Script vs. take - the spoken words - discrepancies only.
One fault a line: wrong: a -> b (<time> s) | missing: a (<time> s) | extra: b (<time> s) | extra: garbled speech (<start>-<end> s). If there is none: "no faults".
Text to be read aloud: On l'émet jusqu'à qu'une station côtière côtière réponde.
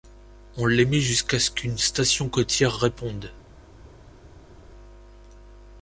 extra: ce (1.4 s)
missing: côtière (2.7 s)